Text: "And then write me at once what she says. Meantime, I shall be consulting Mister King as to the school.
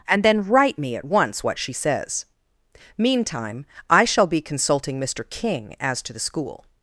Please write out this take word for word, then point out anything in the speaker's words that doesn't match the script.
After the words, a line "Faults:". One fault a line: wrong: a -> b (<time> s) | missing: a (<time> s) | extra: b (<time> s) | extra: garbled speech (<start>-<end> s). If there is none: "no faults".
"And then write me at once what she says. Meantime, I shall be consulting Mister King as to the school.
Faults:
no faults